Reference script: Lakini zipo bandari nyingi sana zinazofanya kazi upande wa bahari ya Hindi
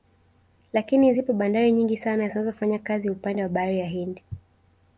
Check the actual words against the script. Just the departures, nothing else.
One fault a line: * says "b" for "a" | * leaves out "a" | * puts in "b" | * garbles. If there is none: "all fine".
all fine